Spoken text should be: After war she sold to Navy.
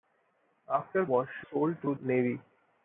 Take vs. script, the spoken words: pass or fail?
pass